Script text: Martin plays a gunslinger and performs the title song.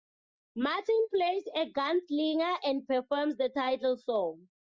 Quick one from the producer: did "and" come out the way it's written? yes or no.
yes